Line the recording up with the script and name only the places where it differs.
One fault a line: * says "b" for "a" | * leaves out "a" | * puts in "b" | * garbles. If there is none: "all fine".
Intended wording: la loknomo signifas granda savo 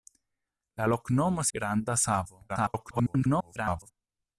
* leaves out "signifas"
* garbles